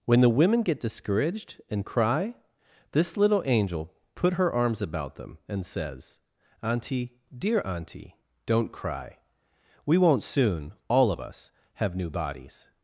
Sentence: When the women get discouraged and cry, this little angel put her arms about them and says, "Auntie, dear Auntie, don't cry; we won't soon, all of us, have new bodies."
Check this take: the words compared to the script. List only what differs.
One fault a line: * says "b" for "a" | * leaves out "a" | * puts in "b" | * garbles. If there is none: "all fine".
all fine